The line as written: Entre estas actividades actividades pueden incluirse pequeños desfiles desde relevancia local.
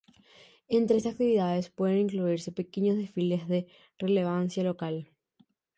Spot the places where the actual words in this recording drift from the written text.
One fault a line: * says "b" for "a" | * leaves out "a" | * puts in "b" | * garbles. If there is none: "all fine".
* leaves out "actividades"
* says "de" for "desde"